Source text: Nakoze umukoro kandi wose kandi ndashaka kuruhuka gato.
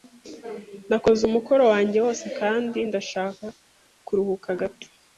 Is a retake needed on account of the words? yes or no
yes